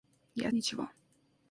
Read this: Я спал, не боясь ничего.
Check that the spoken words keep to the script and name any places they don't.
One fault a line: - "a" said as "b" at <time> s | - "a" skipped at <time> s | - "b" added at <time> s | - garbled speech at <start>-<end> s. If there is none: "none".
- "спал не боясь" skipped at 0.5 s